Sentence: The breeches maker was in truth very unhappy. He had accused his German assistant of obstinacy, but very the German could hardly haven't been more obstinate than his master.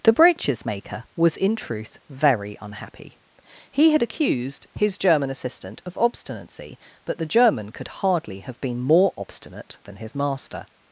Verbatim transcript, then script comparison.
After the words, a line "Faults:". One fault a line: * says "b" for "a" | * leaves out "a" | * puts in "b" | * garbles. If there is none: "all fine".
The breeches maker was in truth very unhappy. He had accused his German assistant of obstinacy, but the German could hardly have been more obstinate than his master.
Faults:
* leaves out "very"
* says "have" for "haven't"